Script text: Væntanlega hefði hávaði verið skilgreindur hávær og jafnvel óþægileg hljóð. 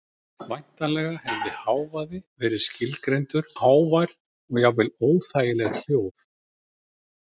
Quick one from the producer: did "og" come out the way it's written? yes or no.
yes